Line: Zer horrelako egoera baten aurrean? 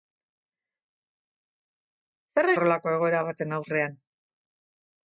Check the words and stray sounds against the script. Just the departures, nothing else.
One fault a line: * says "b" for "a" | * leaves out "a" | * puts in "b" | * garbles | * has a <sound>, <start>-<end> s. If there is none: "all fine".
all fine